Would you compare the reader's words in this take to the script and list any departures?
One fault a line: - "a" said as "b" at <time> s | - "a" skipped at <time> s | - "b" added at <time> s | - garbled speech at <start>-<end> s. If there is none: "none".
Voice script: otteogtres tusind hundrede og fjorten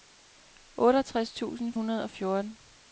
none